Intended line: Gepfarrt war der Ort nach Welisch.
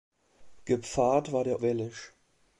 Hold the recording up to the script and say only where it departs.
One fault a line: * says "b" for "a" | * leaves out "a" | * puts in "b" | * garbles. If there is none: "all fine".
* leaves out "Ort nach"